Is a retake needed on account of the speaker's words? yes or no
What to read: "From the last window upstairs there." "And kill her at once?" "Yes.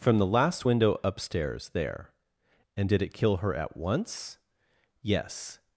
yes